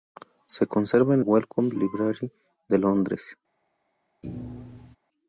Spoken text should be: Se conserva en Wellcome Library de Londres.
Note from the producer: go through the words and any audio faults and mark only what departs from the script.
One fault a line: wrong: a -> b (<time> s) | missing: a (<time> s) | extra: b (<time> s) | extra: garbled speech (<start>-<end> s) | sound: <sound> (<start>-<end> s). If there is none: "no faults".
sound: thud (4.2-5.0 s)